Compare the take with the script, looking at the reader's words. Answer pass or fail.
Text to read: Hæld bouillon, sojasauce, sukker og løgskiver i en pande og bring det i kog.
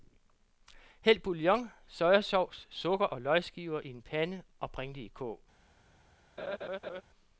pass